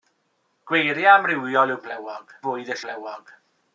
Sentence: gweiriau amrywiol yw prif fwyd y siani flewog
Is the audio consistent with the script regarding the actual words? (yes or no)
no